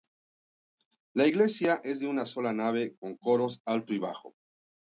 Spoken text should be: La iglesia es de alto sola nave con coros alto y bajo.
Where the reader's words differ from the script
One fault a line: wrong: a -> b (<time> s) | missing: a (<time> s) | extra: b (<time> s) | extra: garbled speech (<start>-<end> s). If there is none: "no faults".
wrong: alto -> una (2.1 s)